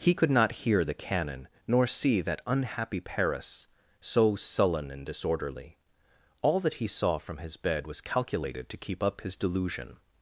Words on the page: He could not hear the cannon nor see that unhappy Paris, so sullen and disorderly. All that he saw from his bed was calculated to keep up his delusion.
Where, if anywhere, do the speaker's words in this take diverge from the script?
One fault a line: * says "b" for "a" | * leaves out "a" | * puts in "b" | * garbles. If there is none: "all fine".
all fine